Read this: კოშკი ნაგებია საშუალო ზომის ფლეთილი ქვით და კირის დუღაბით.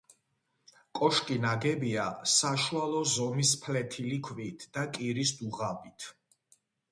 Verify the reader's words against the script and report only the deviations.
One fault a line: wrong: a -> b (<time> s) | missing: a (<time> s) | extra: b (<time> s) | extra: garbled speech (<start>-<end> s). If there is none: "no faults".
no faults